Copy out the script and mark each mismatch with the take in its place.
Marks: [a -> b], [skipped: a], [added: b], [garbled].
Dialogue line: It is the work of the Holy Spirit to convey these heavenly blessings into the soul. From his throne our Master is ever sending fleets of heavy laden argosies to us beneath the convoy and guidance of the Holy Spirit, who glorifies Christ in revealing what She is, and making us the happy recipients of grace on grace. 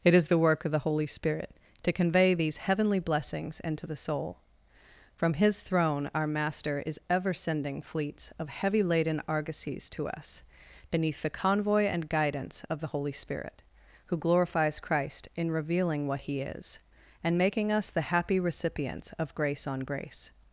It is the work of the Holy Spirit to convey these heavenly blessings into the soul. From his throne our Master is ever sending fleets of heavy laden argosies to us beneath the convoy and guidance of the Holy Spirit, who glorifies Christ in revealing what [She -> He] is, and making us the happy recipients of grace on grace.